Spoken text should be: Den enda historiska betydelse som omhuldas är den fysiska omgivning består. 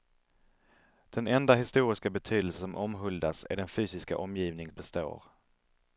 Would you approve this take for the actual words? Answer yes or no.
yes